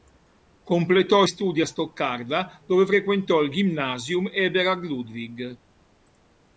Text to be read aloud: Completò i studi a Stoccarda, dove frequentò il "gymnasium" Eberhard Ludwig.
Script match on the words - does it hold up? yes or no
yes